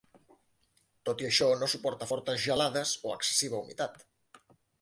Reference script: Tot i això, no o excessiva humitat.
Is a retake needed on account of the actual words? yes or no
yes